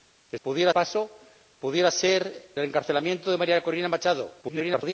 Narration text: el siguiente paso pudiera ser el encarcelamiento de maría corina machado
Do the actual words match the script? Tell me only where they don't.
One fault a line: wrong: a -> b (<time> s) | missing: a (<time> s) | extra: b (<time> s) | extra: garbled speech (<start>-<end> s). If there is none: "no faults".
wrong: siguiente -> pudiera (0.4 s)
missing: el (2.5 s)
extra: garbled speech (4.4-4.9 s)